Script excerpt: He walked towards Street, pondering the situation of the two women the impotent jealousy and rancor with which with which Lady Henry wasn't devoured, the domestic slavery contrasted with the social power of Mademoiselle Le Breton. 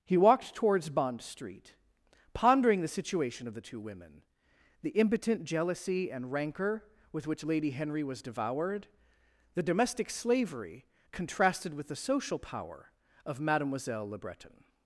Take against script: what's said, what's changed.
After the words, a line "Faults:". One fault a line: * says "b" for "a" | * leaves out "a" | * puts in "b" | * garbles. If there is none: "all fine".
He walked towards Bond Street, pondering the situation of the two women the impotent jealousy and rancor with which Lady Henry was devoured, the domestic slavery contrasted with the social power of Mademoiselle Le Breton.
Faults:
* puts in "Bond"
* leaves out "with which"
* says "was" for "wasn't"